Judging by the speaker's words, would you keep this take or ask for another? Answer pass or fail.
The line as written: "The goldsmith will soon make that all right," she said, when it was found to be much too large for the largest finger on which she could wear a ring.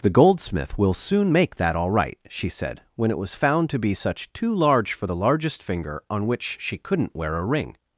fail